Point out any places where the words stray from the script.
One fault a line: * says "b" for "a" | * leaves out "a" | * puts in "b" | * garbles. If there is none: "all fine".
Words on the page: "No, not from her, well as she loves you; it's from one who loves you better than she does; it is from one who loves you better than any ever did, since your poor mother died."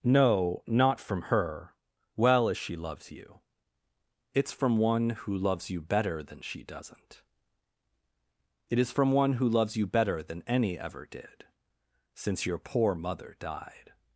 * says "doesn't" for "does"